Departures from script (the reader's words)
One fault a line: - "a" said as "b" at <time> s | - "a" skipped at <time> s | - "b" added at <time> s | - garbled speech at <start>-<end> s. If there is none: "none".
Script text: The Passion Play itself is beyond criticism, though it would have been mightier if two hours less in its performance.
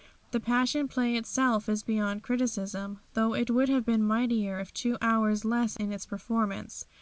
none